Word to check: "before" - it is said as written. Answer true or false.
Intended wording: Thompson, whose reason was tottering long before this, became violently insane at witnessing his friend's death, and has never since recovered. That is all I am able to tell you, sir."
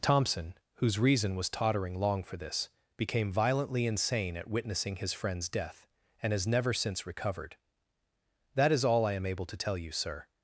false